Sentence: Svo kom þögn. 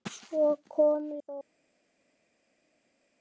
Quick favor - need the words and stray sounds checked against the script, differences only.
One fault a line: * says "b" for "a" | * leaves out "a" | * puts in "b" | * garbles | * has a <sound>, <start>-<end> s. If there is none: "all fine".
all fine